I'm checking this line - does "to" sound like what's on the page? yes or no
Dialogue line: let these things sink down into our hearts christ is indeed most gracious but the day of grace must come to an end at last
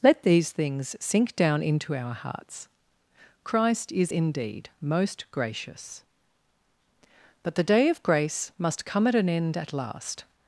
no